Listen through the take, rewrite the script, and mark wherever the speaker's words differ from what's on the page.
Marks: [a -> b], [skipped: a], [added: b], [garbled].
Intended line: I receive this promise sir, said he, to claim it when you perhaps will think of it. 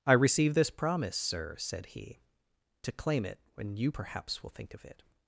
I receive this promise sir, said he, to claim it when you perhaps will think of it.